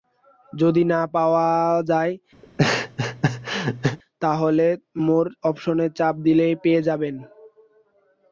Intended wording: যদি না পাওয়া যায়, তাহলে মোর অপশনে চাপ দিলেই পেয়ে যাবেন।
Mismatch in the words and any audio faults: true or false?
true